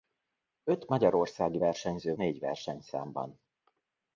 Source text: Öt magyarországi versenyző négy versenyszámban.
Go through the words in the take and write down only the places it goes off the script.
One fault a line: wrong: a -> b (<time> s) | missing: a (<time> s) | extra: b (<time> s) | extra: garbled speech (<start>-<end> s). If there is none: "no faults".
no faults